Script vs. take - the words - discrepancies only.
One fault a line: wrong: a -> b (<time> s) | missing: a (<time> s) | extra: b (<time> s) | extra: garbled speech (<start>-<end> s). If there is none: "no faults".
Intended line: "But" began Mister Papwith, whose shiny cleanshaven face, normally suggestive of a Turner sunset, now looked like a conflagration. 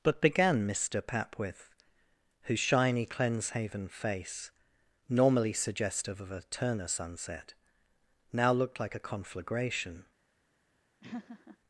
no faults